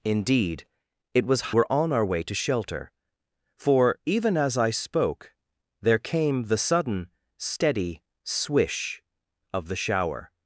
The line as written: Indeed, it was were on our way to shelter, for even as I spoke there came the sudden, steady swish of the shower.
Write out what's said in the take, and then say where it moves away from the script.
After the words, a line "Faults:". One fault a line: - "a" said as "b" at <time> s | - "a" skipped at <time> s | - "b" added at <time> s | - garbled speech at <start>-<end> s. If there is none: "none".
Indeed, it was were on our way to shelter, for even as I spoke there came the sudden, steady swish of the shower.
Faults:
none